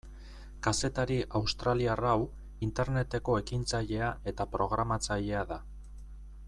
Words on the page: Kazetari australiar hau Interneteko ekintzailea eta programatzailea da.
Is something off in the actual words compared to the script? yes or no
no